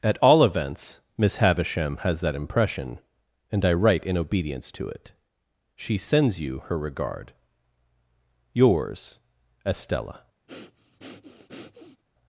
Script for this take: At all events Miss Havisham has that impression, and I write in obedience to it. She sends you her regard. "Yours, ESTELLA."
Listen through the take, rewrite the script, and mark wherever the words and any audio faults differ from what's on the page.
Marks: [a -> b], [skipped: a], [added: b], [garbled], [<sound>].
At all events Miss Havisham has that impression, and I write in obedience to it. She sends you her regard. "Yours, ESTELLA." [breath]